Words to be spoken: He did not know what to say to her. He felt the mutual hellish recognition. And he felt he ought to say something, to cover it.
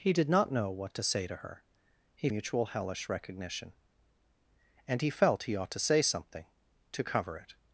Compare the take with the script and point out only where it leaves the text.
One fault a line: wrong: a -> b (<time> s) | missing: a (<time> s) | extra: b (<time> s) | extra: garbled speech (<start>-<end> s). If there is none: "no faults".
missing: felt the (2.3 s)